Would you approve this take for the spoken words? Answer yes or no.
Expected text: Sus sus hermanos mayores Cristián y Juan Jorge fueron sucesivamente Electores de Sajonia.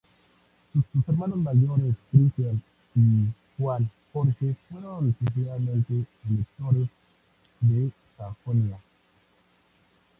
yes